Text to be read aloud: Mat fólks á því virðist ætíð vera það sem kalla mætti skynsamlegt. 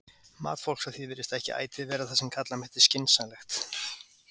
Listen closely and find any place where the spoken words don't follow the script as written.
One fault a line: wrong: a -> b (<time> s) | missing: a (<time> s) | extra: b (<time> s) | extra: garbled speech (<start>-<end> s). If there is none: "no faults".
extra: ekki (1.4 s)